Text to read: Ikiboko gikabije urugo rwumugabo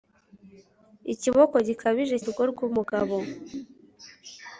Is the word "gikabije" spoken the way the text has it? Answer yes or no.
yes